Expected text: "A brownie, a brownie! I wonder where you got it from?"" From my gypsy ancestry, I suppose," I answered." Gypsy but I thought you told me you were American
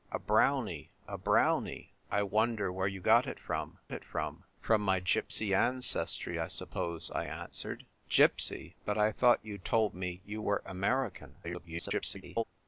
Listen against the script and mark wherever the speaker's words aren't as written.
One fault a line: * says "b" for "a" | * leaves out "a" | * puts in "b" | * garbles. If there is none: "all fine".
* puts in "it from"
* garbles